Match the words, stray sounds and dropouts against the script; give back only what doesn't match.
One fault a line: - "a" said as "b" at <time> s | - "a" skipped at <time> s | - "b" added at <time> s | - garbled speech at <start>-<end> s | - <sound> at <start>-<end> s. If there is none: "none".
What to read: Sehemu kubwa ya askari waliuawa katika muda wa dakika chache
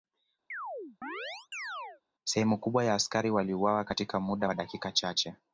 - chirp at 0.5-2.0 s